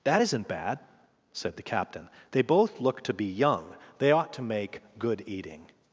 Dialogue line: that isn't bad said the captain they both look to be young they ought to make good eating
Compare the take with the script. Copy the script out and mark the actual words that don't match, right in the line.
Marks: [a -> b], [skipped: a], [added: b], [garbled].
that isn't bad said the captain they both look to be young they ought to make good eating